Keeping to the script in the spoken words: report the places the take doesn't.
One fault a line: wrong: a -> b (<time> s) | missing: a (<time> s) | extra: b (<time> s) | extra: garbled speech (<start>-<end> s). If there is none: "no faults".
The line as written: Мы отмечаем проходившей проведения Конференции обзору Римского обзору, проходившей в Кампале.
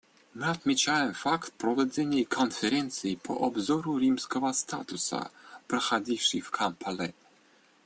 wrong: проходившей -> факт (1.1 s)
extra: по (3.1 s)
wrong: обзору -> статута (4.5 s)